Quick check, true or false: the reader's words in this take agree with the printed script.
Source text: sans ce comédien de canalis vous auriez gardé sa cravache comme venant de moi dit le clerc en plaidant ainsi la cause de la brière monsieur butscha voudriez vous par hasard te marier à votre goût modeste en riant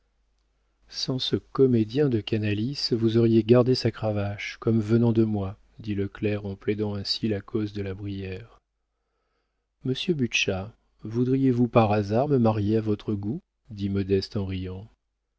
false